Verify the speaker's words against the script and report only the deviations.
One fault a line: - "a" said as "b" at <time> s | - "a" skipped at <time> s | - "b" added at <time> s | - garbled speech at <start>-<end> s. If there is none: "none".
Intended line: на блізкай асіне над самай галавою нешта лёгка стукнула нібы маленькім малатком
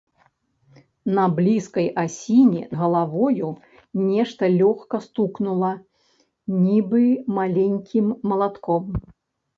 - "над самай" skipped at 2.6 s